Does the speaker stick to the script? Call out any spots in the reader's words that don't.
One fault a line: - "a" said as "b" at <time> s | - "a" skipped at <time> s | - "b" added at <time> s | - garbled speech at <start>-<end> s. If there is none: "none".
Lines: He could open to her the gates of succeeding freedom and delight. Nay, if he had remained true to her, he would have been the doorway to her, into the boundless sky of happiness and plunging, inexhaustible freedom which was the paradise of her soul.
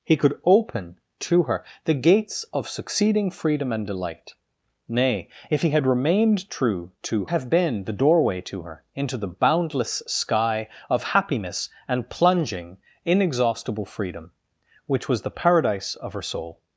- "her he would" skipped at 7.2 s